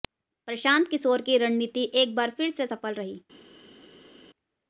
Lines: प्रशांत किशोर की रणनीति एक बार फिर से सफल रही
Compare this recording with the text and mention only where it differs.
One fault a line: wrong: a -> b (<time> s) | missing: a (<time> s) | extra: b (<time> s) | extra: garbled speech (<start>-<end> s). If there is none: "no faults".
no faults